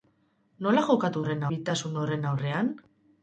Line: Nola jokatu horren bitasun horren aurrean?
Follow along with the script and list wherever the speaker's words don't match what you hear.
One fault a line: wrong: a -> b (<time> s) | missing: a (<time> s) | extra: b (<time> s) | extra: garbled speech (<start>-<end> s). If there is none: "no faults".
no faults